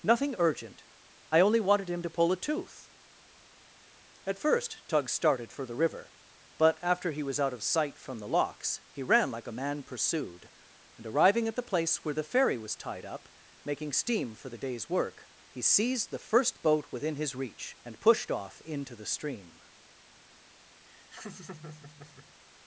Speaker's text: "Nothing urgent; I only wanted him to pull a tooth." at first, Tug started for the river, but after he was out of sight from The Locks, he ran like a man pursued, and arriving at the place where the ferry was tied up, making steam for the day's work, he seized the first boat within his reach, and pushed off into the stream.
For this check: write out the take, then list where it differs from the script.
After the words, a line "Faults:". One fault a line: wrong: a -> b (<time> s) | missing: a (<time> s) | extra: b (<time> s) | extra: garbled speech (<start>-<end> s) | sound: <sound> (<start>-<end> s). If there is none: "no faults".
"Nothing urgent; I only wanted him to pull a tooth." at first, Tug started for the river, but after he was out of sight from The Locks, he ran like a man pursued, and arriving at the place where the ferry was tied up, making steam for the day's work, he seized the first boat within his reach, and pushed off into the stream.
Faults:
sound: laugh (20.8-22.4 s)